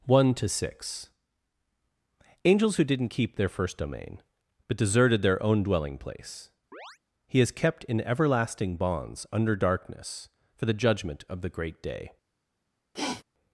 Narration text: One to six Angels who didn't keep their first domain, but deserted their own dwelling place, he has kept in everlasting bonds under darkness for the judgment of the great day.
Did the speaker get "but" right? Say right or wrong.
right